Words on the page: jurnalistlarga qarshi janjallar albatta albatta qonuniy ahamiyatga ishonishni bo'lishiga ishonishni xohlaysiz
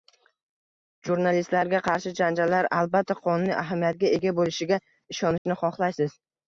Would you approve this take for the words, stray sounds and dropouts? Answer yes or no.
no